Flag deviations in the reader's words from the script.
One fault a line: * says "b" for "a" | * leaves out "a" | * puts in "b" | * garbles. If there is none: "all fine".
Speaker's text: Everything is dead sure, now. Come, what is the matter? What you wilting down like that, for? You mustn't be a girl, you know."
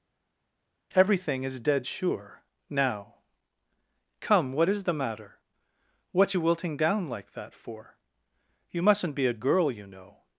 all fine